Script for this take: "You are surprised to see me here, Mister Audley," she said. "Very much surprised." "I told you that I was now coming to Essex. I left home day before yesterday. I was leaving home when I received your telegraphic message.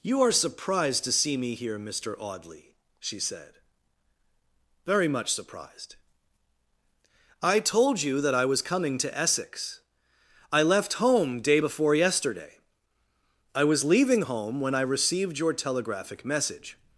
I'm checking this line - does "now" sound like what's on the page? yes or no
no